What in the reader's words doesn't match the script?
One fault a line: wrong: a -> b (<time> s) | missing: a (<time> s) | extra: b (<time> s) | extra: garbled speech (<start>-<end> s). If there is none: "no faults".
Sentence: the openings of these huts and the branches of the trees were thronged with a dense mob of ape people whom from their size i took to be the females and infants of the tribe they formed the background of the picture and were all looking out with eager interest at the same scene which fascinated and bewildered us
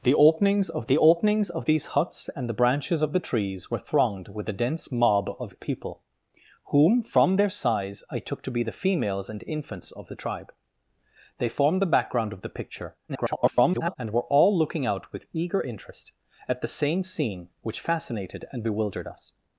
extra: the openings of (0.9 s)
missing: ape (5.5 s)
extra: garbled speech (13.1-14.0 s)